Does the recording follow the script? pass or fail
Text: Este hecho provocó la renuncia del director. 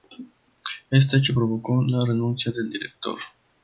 pass